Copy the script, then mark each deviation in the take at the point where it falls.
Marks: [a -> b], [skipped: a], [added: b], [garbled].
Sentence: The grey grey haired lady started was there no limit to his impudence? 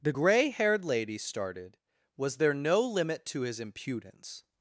The grey [skipped: grey] haired lady started was there no limit to his impudence?